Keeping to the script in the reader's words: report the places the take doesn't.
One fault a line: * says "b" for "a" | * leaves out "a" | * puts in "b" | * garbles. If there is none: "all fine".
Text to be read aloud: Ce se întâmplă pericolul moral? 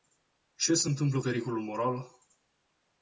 all fine